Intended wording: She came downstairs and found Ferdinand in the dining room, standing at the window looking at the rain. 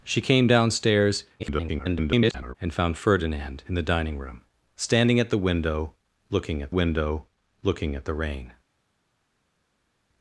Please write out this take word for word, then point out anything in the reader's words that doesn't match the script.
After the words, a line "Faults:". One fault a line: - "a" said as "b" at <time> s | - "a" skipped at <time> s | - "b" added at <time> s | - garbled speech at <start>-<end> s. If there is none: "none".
She came downstairs [garbled] and found Ferdinand in the dining room, standing at the window looking at window looking at the rain.
Faults:
- garbled speech at 1.4-2.5 s
- "window looking at" added at 6.7 s